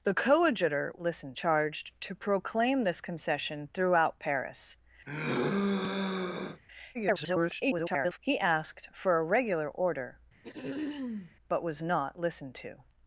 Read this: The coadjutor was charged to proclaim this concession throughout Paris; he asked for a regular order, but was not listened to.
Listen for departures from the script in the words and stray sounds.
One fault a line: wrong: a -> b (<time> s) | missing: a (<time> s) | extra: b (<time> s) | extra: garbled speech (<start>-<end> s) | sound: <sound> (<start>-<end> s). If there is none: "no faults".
wrong: was -> listened (1.0 s)
sound: sigh (5.1-6.6 s)
extra: garbled speech (6.9-8.2 s)
sound: throat clearing (10.4-11.4 s)